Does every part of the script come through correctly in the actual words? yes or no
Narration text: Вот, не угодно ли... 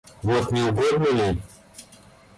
yes